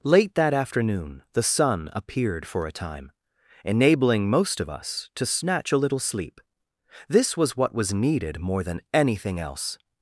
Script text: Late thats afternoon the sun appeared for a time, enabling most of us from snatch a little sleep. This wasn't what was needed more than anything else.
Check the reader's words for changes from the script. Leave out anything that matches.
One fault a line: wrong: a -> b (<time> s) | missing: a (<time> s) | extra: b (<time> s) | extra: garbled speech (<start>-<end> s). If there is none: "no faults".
wrong: thats -> that (0.3 s)
wrong: from -> to (5.1 s)
wrong: wasn't -> was (7.4 s)